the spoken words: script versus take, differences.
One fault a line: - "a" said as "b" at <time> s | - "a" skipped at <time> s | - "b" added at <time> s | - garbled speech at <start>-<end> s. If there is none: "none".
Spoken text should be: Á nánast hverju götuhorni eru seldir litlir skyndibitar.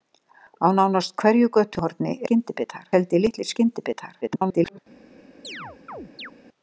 - "eru" said as "skyndibitar" at 2.2 s
- garbled speech at 4.2-4.8 s